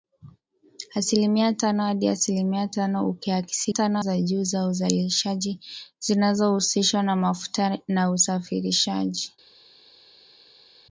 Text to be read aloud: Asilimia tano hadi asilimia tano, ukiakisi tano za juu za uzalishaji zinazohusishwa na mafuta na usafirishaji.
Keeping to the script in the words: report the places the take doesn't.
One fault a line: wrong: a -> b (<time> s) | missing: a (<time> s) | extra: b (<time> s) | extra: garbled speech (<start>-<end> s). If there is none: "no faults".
no faults